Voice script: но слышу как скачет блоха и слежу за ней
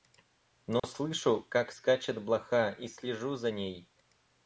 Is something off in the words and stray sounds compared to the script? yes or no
yes